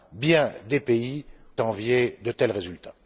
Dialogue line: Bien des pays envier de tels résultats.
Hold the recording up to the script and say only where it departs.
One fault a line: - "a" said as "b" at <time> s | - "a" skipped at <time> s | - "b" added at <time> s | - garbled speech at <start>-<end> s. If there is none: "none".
none